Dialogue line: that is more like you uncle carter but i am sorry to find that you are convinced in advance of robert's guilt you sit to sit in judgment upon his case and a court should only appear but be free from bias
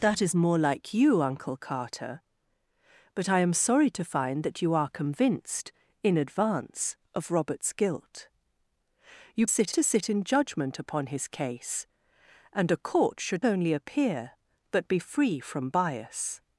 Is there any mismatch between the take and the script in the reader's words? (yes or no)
no